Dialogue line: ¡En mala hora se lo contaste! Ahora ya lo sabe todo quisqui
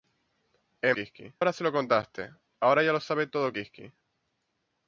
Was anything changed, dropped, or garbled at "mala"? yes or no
yes